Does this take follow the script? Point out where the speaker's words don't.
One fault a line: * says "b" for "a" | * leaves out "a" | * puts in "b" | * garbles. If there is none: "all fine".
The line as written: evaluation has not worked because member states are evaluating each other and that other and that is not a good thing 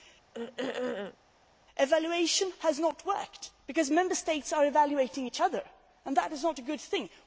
* leaves out "other and that"